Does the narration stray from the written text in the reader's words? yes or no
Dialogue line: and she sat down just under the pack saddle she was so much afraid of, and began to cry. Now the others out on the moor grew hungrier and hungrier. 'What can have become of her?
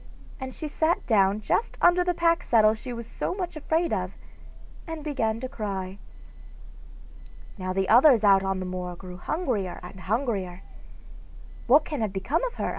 no